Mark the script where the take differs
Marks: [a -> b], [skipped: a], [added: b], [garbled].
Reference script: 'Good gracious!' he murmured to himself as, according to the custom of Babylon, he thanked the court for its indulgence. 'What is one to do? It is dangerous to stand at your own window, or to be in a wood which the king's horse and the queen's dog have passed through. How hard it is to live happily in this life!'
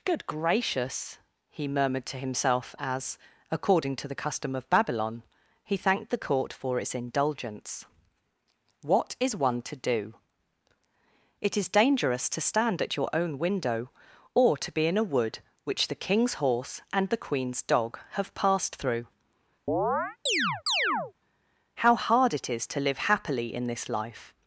'Good gracious!' he murmured to himself as, according to the custom of Babylon, he thanked the court for its indulgence. 'What is one to do? It is dangerous to stand at your own window, or to be in a wood which the king's horse and the queen's dog have passed through. How hard it is to live happily in this life!'